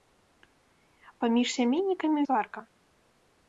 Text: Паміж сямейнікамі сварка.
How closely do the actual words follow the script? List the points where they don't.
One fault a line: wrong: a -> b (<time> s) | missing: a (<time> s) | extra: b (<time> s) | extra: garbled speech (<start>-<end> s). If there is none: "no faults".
no faults